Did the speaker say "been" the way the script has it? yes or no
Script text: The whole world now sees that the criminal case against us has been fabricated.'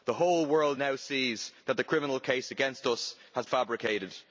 no